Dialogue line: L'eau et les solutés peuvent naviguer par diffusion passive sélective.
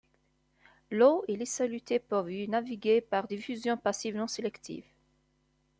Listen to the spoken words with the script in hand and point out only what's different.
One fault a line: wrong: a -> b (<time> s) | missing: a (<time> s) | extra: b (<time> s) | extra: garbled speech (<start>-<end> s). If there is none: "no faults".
extra: y (2.3 s)
extra: non (4.1 s)